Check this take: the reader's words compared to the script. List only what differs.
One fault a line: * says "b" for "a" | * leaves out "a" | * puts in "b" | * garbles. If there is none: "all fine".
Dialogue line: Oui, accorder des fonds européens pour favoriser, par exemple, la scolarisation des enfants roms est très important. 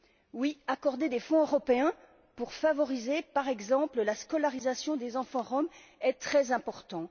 all fine